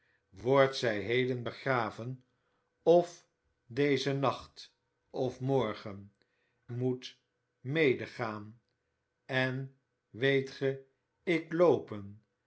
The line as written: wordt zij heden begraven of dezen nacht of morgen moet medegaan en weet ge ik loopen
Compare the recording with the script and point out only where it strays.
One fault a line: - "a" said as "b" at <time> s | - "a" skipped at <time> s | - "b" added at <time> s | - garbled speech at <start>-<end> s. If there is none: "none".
none